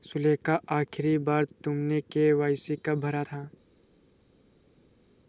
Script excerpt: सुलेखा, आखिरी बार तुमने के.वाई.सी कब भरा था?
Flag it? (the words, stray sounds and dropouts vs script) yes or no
no